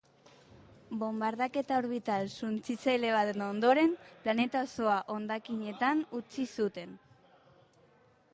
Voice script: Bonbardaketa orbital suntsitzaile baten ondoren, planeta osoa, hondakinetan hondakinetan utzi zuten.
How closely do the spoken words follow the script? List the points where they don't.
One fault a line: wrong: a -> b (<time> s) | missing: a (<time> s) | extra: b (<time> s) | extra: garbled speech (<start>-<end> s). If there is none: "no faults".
missing: hondakinetan (6.0 s)